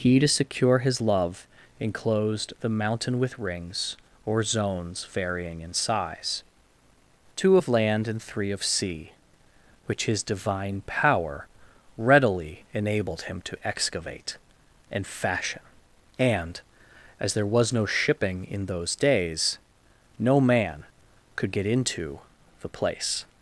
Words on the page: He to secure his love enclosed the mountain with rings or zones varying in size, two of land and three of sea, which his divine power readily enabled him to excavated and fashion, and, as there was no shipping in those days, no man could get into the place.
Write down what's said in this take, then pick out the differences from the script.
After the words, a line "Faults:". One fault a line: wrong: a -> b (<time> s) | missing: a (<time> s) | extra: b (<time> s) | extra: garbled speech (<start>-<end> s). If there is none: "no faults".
He to secure his love enclosed the mountain with rings or zones varying in size, two of land and three of sea, which his divine power readily enabled him to excavate and fashion, and, as there was no shipping in those days, no man could get into the place.
Faults:
wrong: excavated -> excavate (13.7 s)